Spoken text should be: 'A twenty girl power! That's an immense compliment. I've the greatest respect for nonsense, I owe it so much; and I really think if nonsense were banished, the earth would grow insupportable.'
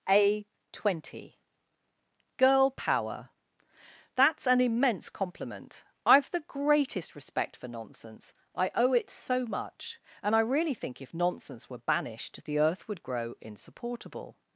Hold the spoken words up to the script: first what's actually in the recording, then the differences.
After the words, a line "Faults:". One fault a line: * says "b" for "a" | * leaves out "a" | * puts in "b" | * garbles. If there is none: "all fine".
'A twenty girl power! That's an immense compliment. I've the greatest respect for nonsense, I owe it so much; and I really think if nonsense were banished, the earth would grow insupportable.'
Faults:
all fine